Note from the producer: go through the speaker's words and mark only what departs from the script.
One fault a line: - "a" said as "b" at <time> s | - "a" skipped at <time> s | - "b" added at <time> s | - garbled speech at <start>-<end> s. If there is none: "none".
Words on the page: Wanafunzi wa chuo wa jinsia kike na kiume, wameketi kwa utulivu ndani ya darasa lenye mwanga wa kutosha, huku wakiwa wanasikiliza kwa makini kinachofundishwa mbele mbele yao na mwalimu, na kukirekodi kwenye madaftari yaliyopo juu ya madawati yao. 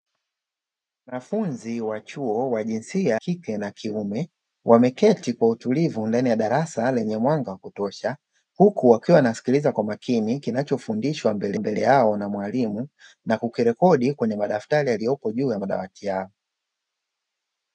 none